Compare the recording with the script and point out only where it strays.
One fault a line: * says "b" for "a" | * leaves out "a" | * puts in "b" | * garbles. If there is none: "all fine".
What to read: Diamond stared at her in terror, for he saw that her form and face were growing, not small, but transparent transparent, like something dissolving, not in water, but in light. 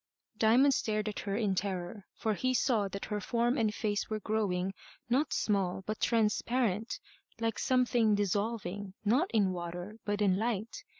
* leaves out "transparent"